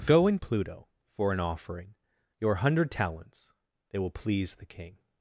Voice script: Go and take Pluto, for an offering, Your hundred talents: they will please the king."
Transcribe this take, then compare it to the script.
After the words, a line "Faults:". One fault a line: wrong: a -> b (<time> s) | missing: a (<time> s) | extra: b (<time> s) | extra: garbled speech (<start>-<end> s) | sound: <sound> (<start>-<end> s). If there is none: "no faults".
Go and Pluto, for an offering, Your hundred talents: they will please the king."
Faults:
missing: take (0.4 s)